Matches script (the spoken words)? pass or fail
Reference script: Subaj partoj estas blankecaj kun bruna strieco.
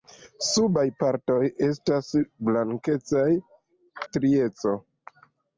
fail